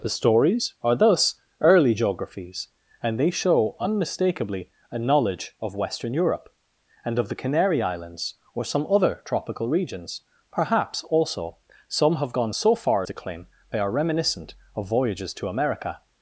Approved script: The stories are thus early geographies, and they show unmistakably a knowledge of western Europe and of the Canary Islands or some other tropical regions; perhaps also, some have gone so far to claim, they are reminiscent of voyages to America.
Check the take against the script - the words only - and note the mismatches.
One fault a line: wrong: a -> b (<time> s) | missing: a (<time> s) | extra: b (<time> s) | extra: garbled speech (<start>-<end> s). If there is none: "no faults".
no faults